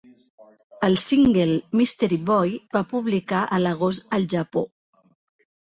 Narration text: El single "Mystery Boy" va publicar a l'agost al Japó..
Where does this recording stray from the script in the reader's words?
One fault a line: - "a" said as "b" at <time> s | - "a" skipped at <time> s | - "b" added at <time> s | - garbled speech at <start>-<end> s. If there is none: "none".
none